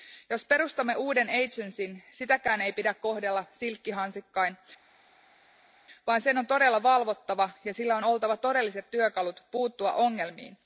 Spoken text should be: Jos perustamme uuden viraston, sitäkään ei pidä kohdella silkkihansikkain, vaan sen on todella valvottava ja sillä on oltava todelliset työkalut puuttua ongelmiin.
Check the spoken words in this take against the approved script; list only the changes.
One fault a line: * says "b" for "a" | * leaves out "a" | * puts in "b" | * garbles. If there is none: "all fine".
all fine